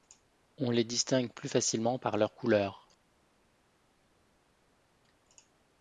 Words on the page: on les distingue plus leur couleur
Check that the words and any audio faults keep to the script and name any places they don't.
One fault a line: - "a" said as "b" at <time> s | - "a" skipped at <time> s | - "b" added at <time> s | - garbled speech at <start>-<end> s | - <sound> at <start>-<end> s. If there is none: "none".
- "facilement par" added at 1.5 s